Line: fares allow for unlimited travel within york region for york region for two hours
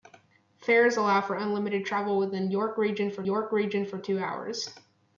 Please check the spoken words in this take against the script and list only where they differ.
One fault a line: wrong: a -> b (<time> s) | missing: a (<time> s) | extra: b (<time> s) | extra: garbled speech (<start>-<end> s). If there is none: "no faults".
no faults